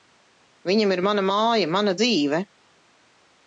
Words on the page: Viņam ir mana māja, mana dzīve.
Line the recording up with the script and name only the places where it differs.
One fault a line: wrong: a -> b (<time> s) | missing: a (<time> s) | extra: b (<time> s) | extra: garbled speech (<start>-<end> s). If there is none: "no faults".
no faults